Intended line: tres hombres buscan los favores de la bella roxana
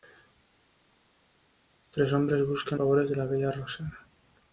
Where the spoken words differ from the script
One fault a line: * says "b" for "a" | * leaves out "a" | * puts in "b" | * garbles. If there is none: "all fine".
* leaves out "los"